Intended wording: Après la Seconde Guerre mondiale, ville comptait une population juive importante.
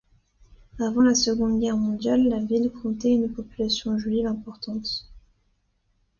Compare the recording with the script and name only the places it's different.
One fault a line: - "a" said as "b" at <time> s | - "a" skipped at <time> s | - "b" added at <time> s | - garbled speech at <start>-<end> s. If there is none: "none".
- "Après" said as "Avant" at 0.8 s
- "la" added at 2.3 s